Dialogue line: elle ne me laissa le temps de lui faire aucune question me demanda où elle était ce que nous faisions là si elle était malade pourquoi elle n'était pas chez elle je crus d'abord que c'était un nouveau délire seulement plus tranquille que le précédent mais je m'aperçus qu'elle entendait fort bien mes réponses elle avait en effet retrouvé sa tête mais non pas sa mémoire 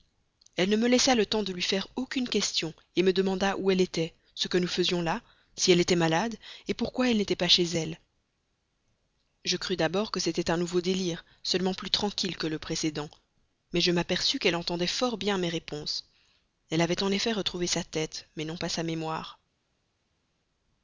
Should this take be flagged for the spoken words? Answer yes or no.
no